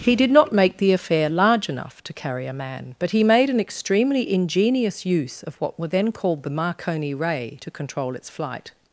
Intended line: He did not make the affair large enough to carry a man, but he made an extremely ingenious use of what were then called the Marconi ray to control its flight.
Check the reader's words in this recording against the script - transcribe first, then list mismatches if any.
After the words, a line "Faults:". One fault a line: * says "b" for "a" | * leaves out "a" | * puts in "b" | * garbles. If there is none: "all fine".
He did not make the affair large enough to carry a man, but he made an extremely ingenious use of what were then called the Marconi ray to control its flight.
Faults:
all fine